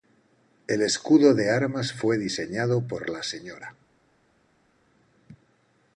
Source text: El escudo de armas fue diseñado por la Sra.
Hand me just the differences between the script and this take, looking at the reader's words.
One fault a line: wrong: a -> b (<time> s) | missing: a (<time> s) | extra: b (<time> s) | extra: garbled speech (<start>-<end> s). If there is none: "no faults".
no faults